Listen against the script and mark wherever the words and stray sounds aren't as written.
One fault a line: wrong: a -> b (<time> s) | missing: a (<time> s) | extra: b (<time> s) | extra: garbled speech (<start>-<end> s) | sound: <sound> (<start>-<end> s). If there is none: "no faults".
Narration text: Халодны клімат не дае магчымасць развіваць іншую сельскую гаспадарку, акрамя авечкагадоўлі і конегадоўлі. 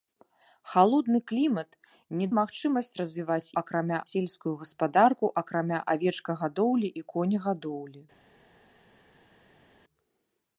missing: дае (2.3 s)
wrong: іншую -> акрамя (3.6 s)